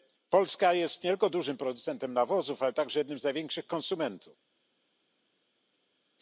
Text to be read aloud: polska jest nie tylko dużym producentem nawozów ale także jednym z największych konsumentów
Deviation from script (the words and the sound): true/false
false